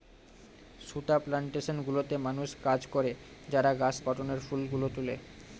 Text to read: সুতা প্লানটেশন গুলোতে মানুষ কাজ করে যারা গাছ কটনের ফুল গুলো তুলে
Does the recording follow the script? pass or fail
pass